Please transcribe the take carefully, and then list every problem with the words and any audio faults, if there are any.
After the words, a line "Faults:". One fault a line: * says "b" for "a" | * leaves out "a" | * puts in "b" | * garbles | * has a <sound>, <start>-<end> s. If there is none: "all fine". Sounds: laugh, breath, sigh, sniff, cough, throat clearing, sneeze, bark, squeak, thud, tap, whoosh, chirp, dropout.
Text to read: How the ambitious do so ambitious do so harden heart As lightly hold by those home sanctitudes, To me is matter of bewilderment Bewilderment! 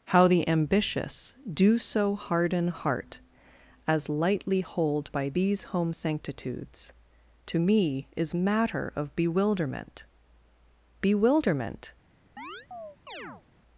How the ambitious do so harden heart As lightly hold by these home sanctitudes, To me is matter of bewilderment Bewilderment!
Faults:
* leaves out "ambitious do so"
* says "these" for "those"
* has a chirp, 12.4-13.4 s